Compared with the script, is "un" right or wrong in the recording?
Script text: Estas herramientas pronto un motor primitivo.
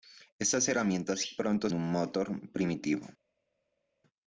right